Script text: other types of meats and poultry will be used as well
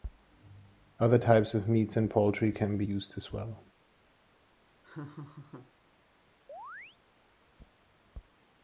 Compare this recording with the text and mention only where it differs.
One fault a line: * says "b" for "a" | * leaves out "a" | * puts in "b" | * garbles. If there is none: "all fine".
* says "can" for "will"